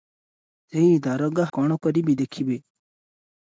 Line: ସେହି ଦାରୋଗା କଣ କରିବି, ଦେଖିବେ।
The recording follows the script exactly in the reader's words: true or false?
true